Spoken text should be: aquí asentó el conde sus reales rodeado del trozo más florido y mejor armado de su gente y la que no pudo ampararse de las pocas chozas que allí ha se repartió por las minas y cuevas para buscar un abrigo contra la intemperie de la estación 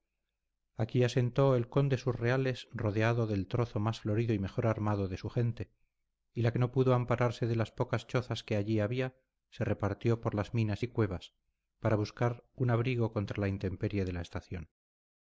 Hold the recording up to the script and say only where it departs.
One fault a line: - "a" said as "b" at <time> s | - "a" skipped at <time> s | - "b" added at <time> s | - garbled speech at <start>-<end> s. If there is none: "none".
- "ha" said as "había" at 8.8 s